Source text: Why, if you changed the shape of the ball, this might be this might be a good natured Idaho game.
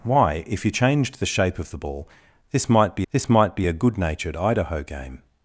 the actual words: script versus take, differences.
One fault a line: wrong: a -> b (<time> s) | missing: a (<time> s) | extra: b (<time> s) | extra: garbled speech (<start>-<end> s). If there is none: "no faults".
no faults